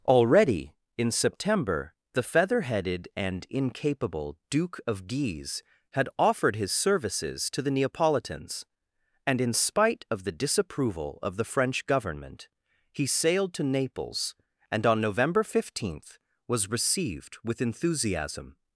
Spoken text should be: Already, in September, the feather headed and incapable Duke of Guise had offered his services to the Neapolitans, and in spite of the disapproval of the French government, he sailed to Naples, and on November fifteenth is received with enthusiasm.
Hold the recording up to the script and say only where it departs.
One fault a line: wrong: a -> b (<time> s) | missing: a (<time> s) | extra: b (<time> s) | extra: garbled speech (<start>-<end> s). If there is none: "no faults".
wrong: is -> was (16.5 s)